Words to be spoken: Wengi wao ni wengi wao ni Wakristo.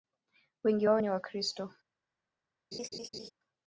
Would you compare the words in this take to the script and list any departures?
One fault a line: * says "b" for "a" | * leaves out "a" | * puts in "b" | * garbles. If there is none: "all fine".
* leaves out "wengi wao ni"